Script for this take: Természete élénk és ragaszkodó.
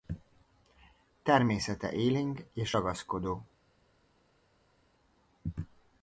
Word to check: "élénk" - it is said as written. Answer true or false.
true